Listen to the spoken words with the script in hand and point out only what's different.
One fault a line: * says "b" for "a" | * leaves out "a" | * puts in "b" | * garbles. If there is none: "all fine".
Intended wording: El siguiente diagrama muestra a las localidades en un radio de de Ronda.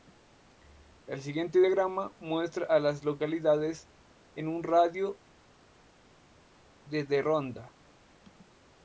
all fine